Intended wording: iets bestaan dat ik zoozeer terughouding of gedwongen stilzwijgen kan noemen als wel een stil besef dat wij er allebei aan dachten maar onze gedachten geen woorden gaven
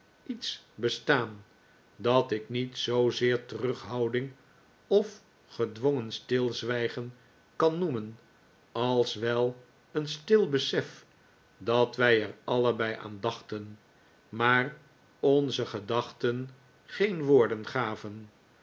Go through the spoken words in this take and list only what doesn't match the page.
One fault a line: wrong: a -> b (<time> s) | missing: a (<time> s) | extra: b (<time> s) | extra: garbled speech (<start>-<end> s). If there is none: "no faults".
extra: niet (2.5 s)